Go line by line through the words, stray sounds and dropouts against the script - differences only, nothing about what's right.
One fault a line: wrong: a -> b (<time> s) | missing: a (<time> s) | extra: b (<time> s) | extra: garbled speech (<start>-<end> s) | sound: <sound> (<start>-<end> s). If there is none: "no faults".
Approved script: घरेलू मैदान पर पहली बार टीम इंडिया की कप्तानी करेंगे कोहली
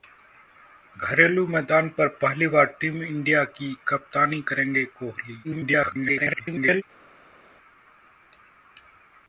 extra: garbled speech (5.4-6.8 s)